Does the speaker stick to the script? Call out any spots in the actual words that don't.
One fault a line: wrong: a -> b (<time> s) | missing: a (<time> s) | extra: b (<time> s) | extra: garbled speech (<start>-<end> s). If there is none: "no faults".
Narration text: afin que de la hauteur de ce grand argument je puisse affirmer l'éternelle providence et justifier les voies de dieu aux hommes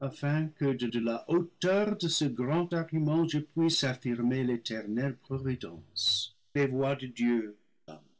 extra: de (0.9 s)
missing: et justifier (6.4 s)
missing: aux (7.6 s)